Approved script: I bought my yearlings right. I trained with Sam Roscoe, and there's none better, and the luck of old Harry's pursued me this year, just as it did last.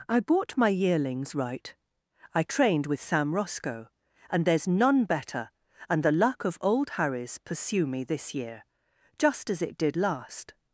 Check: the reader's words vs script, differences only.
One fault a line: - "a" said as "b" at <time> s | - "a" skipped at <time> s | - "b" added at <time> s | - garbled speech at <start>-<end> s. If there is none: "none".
- "pursued" said as "pursue" at 7.4 s